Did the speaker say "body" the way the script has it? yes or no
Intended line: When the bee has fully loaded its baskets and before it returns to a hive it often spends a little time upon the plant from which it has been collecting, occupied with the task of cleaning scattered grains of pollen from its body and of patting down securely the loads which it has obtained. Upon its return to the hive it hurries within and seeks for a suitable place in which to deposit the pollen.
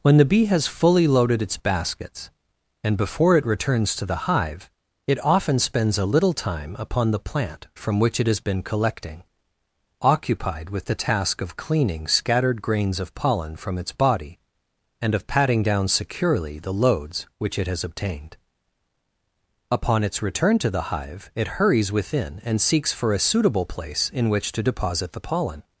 yes